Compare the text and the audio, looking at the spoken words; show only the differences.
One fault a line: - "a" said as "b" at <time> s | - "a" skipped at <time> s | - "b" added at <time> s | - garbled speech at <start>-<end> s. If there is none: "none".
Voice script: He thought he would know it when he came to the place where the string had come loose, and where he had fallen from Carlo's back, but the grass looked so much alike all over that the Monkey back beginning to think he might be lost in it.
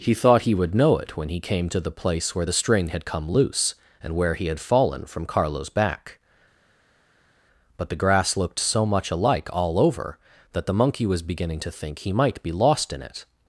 - "back" said as "was" at 11.1 s